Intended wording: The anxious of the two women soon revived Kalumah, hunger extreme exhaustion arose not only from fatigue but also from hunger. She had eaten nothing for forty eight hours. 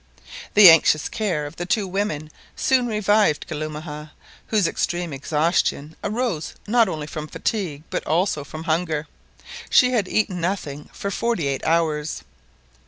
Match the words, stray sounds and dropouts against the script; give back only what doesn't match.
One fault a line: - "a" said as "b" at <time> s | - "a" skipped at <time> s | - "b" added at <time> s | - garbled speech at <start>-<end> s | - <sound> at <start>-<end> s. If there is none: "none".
- "care" added at 1.1 s
- "hunger" said as "whose" at 4.5 s